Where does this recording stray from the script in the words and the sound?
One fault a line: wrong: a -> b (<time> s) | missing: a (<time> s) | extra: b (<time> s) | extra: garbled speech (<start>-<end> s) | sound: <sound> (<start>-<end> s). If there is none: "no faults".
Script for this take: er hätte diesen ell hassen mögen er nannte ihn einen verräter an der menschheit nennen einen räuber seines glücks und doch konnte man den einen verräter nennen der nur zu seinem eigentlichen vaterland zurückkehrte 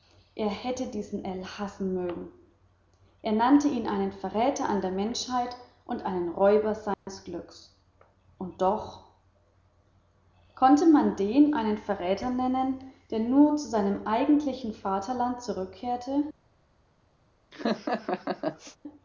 wrong: nennen -> und (5.8 s)
sound: dropout (6.9-7.1 s)
sound: laugh (17.5-18.8 s)